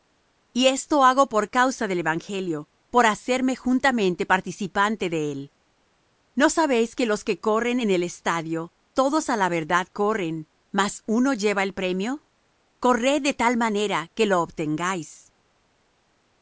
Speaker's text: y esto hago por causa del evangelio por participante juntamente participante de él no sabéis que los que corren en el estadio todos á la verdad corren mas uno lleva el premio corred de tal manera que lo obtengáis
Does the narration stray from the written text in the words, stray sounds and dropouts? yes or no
yes